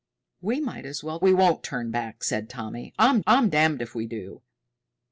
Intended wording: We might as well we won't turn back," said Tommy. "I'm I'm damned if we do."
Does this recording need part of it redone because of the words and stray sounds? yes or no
no